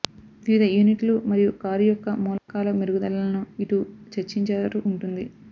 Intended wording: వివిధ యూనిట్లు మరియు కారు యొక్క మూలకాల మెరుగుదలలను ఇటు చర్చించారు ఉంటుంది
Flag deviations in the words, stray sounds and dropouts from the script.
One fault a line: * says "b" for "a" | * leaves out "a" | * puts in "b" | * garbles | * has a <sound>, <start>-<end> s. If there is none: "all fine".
* has a dropout, 2.4-2.5 s